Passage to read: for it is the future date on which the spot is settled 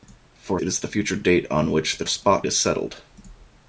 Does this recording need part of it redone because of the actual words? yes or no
no